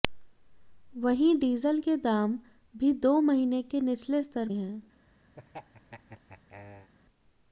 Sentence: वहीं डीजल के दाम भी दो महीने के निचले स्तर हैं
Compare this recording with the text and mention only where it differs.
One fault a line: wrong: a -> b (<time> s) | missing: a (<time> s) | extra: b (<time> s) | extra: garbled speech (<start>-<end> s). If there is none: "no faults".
no faults